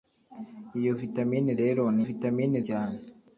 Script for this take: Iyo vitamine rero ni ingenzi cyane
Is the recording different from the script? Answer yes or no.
yes